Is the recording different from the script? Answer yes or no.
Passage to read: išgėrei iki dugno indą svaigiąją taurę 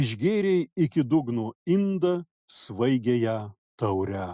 no